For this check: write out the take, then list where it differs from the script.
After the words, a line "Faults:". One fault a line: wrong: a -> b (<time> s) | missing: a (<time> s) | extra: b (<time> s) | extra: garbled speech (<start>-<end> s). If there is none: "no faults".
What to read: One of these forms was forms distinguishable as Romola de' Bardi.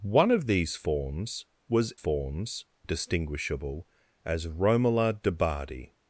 One of these forms was forms distinguishable as Romola de' Bardi.
Faults:
no faults